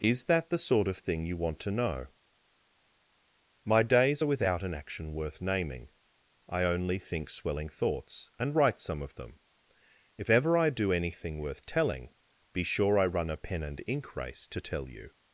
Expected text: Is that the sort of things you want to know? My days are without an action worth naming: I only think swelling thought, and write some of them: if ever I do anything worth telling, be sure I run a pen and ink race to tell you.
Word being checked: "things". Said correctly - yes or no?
no